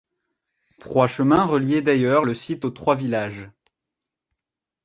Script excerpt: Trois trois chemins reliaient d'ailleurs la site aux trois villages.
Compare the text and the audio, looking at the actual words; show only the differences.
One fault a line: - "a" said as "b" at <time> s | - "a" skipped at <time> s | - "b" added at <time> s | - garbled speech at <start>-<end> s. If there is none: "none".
- "trois" skipped at 1.1 s
- "la" said as "le" at 2.2 s